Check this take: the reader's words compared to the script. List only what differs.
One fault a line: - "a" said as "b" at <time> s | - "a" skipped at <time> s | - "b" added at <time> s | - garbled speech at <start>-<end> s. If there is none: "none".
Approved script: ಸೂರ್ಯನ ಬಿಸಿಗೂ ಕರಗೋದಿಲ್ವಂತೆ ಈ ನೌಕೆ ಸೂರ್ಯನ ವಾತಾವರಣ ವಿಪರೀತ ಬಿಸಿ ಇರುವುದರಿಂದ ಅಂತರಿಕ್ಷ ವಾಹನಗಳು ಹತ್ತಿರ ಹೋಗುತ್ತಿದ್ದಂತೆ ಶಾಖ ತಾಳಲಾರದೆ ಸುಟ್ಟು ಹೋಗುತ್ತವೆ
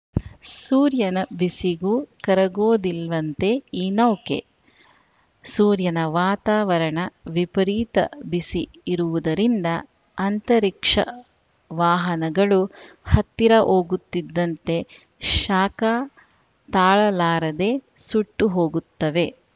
none